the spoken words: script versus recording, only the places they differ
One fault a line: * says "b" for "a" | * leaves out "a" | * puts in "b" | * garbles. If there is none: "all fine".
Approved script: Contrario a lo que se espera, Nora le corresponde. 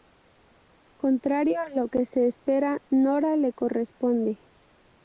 all fine